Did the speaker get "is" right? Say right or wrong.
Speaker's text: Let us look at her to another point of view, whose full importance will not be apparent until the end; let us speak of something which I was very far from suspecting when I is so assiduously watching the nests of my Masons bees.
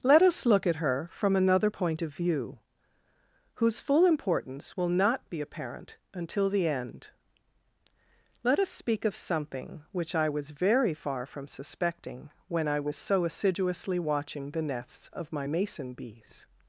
wrong